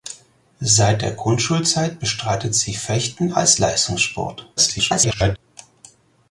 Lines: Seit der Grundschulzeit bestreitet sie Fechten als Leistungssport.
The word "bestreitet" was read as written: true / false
true